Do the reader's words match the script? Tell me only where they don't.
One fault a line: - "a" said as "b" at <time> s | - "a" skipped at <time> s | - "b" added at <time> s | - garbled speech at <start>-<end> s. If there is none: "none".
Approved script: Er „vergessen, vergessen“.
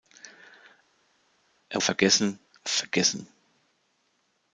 none